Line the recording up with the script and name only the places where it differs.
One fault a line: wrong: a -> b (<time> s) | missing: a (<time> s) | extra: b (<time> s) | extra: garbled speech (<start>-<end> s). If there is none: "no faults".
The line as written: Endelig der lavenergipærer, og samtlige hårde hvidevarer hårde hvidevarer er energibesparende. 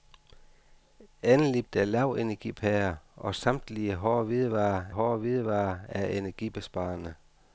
no faults